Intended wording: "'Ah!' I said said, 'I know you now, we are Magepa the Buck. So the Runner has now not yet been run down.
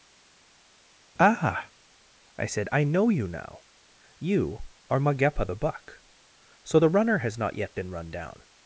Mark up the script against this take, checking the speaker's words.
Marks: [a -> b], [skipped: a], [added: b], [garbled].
"'Ah!' I said [skipped: said,] 'I know you now, [we -> you] are Magepa the Buck. So the Runner has [skipped: now] not yet been run down.